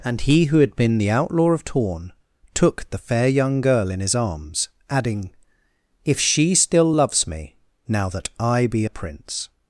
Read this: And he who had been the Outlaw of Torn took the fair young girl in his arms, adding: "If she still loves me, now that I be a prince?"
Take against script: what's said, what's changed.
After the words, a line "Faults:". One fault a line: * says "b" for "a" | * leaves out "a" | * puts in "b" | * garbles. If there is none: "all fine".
And he who had been the Outlaw of Torn took the fair young girl in his arms, adding: "If she still loves me, now that I be a prince?"
Faults:
all fine